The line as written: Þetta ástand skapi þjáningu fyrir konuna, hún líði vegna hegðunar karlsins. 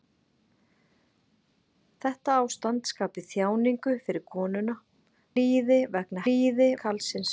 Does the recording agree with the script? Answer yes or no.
no